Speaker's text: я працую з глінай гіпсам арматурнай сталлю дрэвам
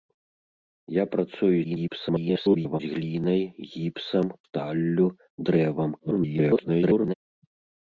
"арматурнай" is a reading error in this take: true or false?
true